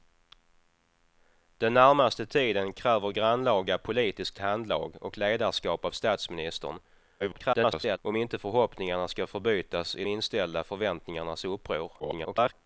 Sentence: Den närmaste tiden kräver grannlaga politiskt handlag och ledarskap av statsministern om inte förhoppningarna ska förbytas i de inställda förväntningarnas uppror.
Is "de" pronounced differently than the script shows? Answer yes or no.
yes